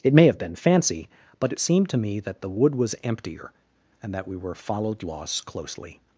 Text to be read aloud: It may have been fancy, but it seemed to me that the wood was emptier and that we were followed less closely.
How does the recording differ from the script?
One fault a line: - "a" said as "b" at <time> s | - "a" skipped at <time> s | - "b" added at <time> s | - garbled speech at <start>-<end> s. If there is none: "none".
- "less" said as "loss" at 5.0 s